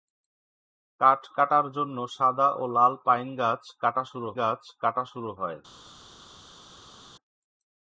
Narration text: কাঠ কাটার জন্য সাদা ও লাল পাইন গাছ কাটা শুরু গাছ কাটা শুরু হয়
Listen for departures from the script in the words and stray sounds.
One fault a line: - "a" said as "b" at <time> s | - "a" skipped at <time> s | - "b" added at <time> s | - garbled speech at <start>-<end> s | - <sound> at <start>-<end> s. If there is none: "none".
none